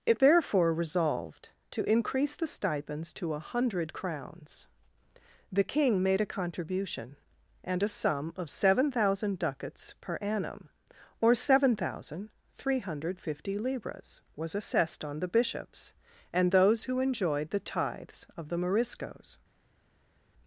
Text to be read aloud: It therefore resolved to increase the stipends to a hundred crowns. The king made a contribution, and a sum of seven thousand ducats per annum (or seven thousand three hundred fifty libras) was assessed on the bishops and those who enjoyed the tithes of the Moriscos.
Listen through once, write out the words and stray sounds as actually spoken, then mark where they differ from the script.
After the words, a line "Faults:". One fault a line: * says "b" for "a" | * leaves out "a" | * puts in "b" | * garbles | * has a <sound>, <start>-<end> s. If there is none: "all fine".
It therefore resolved to increase the stipends to a hundred crowns. The king made a contribution, and a sum of seven thousand ducats per annum (or seven thousand three hundred fifty libras) was assessed on the bishops and those who enjoyed the tithes of the Moriscos.
Faults:
all fine